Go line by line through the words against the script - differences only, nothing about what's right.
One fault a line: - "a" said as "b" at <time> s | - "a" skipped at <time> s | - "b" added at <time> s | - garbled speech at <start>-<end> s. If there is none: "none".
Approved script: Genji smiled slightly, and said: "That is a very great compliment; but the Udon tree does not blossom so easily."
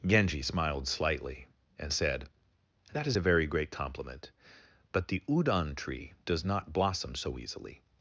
none